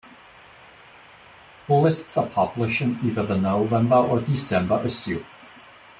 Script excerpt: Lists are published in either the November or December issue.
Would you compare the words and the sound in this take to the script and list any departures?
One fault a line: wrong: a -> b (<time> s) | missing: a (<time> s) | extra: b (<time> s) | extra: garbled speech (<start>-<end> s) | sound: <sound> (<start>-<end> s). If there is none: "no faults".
no faults